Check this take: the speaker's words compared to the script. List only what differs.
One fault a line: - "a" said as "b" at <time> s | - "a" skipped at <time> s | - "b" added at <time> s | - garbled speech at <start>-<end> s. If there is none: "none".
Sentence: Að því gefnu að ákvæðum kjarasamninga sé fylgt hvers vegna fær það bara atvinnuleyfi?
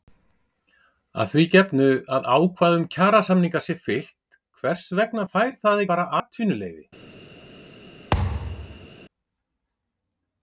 none